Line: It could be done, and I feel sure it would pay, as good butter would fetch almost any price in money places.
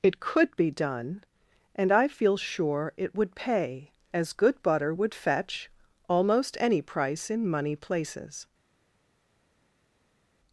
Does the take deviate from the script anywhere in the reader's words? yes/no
no